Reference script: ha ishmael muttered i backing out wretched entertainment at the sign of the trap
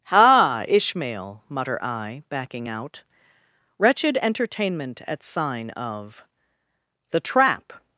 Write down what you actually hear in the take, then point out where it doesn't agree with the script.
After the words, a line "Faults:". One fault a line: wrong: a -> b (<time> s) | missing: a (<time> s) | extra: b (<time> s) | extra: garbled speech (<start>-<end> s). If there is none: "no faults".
ha ishmael mutter i backing out wretched entertainment at sign of the trap
Faults:
wrong: muttered -> mutter (1.5 s)
missing: the (5.2 s)